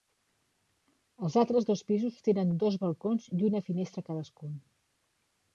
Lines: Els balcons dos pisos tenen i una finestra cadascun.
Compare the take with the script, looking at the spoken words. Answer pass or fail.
fail